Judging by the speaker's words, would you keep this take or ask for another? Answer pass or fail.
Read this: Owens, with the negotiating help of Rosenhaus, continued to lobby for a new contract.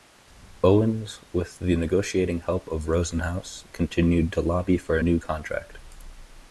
pass